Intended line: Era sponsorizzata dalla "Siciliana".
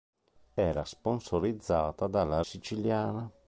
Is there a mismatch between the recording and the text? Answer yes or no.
no